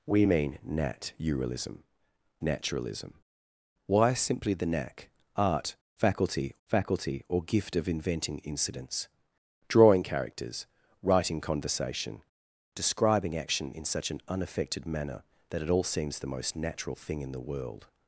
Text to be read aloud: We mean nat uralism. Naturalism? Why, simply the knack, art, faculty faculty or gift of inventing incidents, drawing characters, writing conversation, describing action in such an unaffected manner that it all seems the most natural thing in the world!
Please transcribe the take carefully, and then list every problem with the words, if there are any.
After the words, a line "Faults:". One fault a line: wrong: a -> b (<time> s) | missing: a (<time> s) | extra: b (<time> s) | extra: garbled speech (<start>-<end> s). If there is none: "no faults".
We mean nat uralism. Naturalism? Why, simply the knack, art, faculty faculty or gift of inventing incidents, drawing characters, writing conversation, describing action in such an unaffected manner that it all seems the most natural thing in the world!
Faults:
no faults